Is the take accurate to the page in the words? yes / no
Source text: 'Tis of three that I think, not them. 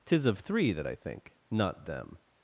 yes